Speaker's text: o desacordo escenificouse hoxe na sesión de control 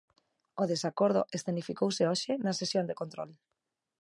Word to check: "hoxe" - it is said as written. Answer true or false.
true